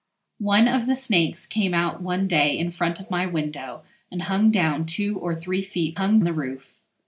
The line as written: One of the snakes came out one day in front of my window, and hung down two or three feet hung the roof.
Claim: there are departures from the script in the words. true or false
false